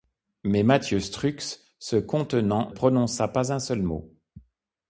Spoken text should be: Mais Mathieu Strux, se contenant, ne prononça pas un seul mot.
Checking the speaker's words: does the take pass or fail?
fail